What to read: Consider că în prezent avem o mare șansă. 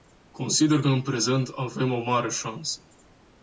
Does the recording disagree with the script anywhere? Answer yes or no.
no